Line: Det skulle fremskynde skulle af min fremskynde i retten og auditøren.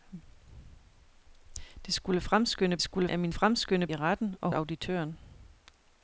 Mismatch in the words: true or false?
false